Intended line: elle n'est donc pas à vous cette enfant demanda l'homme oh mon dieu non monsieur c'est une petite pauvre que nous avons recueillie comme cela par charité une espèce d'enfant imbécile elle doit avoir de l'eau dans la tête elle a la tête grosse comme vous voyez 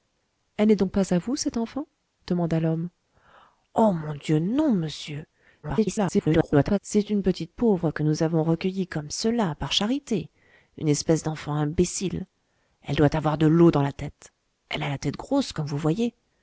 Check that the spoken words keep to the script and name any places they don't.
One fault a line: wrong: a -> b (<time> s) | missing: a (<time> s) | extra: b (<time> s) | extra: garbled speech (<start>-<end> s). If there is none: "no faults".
extra: garbled speech (5.6-6.8 s)